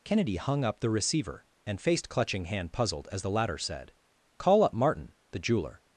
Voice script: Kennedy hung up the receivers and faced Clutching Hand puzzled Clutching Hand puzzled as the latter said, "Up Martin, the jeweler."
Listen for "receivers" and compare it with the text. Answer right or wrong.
wrong